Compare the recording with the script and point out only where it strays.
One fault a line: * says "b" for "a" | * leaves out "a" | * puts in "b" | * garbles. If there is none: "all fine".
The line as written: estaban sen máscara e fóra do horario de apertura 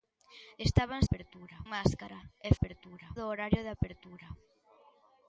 * says "apertura" for "sen"
* says "apertura" for "fóra"